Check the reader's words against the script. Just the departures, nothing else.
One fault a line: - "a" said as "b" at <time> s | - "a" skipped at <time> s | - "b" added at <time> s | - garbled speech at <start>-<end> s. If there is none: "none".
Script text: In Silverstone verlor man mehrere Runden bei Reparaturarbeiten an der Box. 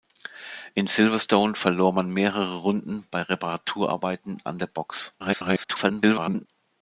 - garbled speech at 5.2-6.5 s